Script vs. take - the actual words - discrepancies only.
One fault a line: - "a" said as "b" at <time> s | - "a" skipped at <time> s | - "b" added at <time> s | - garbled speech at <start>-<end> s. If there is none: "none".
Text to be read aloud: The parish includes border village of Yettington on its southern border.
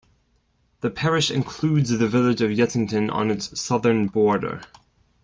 - "border" said as "the" at 1.9 s